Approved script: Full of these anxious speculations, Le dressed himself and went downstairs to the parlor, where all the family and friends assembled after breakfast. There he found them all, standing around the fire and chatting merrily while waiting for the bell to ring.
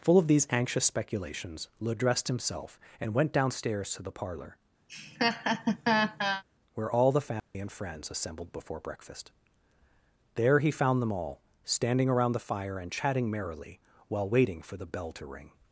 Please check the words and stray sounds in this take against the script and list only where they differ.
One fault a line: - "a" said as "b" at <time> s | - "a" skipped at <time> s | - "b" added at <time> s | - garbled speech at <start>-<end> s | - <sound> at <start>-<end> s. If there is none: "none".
- laugh at 4.9-6.4 s
- dropout at 7.4-7.5 s
- "after" said as "before" at 8.5 s